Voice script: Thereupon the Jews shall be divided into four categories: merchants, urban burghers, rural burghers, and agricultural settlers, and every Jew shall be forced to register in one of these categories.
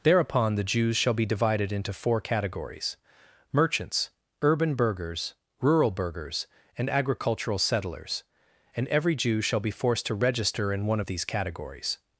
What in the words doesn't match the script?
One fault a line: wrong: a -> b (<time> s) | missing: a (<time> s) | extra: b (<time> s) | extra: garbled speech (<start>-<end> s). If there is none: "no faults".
no faults